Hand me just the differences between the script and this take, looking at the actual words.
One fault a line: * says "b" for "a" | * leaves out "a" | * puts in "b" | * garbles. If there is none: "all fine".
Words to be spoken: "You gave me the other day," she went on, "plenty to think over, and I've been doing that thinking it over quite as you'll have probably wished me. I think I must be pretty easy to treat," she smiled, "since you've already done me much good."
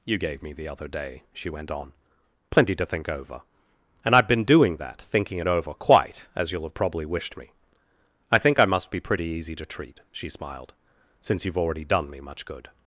all fine